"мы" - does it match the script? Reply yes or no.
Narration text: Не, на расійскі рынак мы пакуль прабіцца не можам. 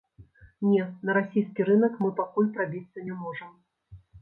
yes